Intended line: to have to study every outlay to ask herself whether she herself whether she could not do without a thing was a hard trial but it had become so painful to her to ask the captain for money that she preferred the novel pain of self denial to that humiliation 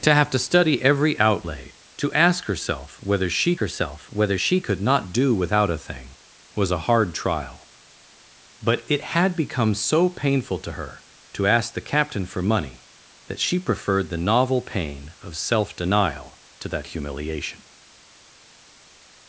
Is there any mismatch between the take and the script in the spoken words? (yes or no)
no